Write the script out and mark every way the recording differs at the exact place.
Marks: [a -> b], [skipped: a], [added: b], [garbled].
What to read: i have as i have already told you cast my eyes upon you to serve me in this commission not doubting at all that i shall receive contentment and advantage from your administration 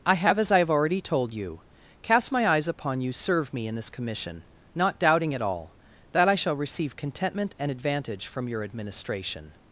i have as i have already told you cast my eyes upon you [skipped: to] serve me in this commission not doubting at all that i shall receive contentment and advantage from your administration